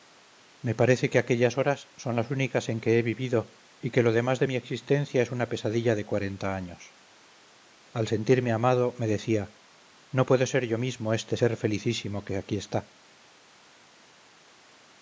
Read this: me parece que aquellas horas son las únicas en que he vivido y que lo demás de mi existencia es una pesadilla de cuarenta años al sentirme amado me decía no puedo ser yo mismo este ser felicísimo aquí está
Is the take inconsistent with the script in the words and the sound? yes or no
yes